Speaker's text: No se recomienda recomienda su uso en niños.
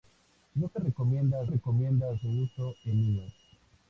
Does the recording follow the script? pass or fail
pass